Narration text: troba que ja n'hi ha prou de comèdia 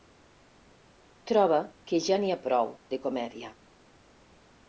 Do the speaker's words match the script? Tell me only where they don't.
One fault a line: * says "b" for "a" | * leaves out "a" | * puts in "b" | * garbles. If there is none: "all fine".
all fine